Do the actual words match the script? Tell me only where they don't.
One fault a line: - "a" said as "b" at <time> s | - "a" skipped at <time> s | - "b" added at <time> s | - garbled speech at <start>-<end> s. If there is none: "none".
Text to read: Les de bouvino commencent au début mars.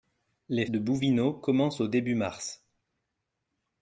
none